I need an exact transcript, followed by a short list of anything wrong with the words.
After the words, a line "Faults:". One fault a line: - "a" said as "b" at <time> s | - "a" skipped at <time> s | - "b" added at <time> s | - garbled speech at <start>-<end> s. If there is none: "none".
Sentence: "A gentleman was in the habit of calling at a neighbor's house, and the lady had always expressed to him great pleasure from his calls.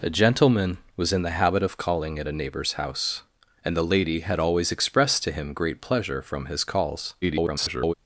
"A gentleman was in the habit of calling at a neighbor's house, and the lady had always expressed to him great pleasure from his calls. [garbled]
Faults:
- garbled speech at 7.2-7.9 s